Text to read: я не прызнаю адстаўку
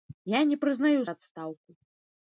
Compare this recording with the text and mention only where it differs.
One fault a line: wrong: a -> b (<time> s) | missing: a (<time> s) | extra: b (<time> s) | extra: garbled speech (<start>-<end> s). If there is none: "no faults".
no faults